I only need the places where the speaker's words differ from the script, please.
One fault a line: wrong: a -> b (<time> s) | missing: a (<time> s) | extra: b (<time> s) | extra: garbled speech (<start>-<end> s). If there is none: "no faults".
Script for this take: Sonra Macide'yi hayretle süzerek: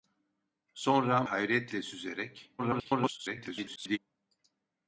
missing: Macide'yi (1.2 s)
extra: garbled speech (2.6-4.0 s)